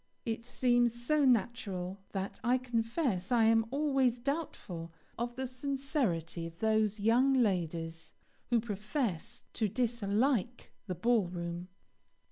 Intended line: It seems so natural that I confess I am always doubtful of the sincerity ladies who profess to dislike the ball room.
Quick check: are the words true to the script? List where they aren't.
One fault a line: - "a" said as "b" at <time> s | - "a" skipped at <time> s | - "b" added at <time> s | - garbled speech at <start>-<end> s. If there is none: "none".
- "of those young" added at 6.5 s